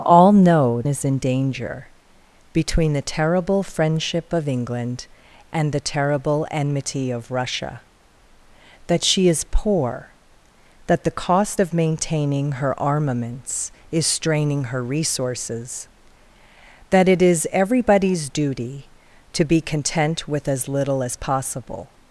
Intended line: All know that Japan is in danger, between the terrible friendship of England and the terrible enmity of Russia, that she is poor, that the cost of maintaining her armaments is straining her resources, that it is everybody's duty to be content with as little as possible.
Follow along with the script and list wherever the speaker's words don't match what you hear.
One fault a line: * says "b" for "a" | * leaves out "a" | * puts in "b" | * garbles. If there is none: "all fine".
* leaves out "that Japan"